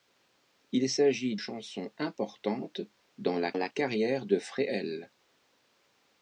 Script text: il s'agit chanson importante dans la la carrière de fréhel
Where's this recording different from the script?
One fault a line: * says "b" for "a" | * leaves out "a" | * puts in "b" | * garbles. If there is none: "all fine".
all fine